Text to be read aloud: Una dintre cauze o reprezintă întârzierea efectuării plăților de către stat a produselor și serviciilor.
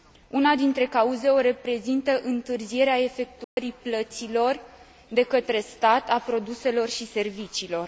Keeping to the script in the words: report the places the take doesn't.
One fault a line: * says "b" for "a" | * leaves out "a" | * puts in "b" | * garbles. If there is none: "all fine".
all fine